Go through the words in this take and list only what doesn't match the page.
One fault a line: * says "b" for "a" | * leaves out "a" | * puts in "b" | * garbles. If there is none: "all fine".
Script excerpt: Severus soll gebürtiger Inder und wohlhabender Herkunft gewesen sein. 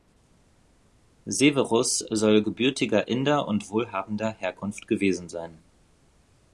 all fine